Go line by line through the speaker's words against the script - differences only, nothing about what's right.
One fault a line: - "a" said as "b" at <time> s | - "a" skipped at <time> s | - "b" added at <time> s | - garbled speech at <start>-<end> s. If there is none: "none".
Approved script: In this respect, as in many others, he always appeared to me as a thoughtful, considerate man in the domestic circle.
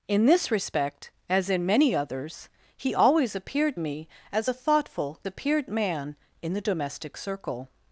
- "to" skipped at 3.8 s
- "considerate" said as "appeared" at 5.3 s